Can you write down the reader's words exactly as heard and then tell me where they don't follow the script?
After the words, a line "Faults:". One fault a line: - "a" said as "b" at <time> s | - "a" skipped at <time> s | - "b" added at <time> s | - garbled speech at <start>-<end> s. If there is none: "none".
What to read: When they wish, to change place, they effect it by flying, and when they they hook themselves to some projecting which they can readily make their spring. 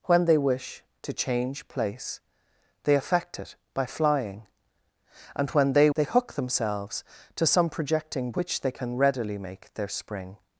When they wish, to change place, they effect it by flying, and when they they hook themselves to some projecting which they can readily make their spring.
Faults:
none